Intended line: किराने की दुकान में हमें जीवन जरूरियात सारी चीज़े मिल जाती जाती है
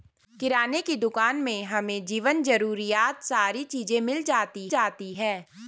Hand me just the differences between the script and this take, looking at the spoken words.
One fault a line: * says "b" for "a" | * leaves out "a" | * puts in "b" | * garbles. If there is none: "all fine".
all fine